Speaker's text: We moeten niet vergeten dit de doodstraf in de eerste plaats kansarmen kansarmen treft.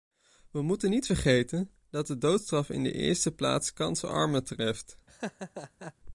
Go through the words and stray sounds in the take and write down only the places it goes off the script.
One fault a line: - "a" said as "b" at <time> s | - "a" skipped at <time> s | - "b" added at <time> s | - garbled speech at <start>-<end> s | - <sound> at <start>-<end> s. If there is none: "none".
- "dit" said as "dat" at 1.9 s
- "kansarmen" skipped at 4.4 s
- laugh at 5.1-5.9 s